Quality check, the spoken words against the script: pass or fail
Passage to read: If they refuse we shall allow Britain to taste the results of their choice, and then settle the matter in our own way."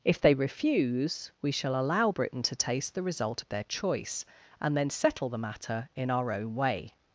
fail